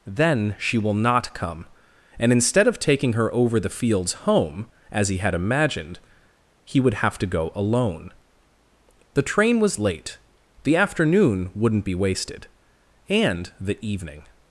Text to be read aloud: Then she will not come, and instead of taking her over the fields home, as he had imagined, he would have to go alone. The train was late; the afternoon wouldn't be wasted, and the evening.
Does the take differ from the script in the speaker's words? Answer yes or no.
no